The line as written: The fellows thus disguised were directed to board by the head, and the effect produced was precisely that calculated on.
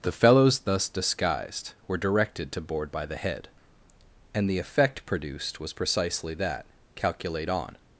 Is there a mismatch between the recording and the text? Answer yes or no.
yes